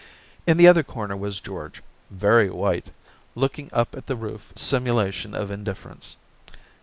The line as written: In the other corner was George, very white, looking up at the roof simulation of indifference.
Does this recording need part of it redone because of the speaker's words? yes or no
no